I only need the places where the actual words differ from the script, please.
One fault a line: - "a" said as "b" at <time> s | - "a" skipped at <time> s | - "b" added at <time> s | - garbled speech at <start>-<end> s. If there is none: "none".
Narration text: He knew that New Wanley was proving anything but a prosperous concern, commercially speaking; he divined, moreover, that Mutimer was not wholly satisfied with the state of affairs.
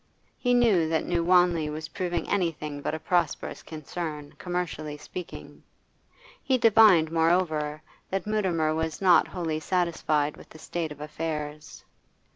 none